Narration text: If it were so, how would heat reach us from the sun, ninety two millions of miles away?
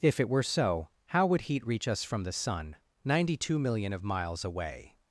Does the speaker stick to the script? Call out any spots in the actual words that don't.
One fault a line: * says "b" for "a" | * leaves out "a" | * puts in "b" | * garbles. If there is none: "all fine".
* says "million" for "millions"